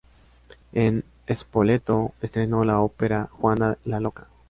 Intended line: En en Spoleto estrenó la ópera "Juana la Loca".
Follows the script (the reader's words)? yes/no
no